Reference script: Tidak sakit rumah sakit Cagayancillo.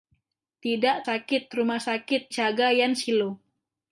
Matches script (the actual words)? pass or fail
pass